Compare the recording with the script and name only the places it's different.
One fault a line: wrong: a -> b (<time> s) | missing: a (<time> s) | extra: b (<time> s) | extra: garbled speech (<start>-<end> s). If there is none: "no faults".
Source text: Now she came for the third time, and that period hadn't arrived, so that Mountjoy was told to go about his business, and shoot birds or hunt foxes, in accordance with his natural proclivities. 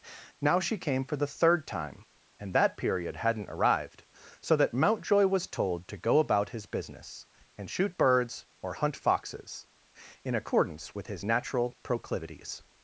no faults